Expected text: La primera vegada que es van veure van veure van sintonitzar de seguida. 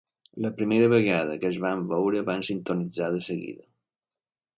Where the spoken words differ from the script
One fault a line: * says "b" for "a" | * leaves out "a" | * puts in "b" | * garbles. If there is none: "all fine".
* leaves out "veure van"